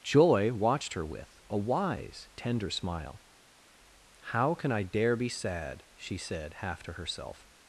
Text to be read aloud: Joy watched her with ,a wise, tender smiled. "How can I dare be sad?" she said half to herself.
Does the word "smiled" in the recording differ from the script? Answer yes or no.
yes